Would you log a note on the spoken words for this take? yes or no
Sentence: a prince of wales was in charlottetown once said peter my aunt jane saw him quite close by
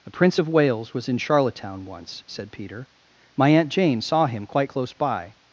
no